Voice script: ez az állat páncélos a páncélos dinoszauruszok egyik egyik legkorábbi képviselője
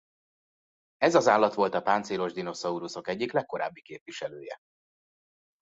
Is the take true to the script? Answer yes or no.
no